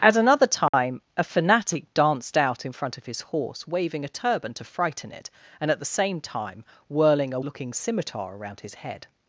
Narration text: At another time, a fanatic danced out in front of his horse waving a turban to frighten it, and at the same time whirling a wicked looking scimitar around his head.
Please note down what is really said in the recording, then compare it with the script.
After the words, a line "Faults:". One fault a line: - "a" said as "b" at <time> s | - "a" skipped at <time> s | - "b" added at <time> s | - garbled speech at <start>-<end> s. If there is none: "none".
At another time, a fanatic danced out in front of his horse waving a turban to frighten it, and at the same time whirling a looking scimitar around his head.
Faults:
- "wicked" skipped at 7.4 s